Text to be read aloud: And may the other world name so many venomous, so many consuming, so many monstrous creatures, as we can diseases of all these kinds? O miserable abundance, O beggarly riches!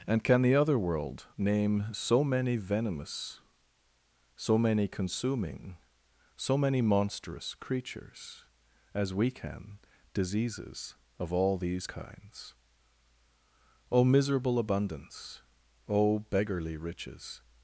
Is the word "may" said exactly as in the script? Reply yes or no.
no